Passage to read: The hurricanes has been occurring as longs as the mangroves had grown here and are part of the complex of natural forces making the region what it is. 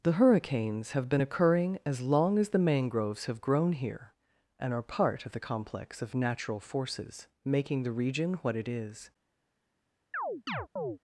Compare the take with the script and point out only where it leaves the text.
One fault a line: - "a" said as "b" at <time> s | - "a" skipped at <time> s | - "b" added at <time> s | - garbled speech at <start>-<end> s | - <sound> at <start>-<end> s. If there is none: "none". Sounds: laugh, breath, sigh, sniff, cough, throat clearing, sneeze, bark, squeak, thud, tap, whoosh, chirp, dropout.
- "has" said as "have" at 0.9 s
- "longs" said as "long" at 2.0 s
- "had" said as "have" at 3.3 s
- chirp at 10.1-11.0 s